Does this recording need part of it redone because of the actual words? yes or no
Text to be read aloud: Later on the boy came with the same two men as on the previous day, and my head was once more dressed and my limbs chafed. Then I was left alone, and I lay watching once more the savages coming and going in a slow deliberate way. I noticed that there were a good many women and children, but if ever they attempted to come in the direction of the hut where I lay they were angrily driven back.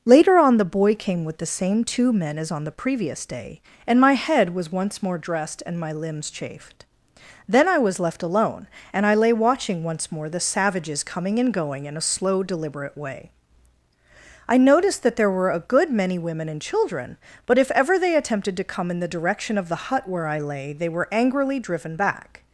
no